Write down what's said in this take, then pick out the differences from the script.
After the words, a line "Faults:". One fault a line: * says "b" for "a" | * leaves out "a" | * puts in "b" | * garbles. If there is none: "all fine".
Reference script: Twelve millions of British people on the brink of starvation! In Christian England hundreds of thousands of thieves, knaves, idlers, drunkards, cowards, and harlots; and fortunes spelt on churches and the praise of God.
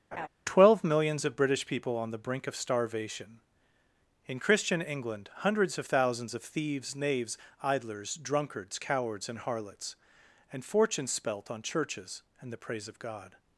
Twelve millions of British people on the brink of starvation! In Christian England hundreds of thousands of thieves, knaves, idlers, drunkards, cowards, and harlots; and fortunes spelt on churches and the praise of God.
Faults:
all fine